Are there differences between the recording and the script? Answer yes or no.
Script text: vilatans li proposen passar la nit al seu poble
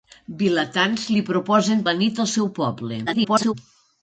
yes